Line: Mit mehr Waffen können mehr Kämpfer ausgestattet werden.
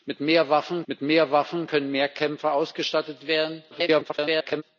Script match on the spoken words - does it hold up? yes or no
no